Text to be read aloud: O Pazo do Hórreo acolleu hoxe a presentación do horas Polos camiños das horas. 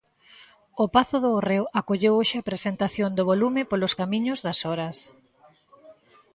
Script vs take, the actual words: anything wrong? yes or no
yes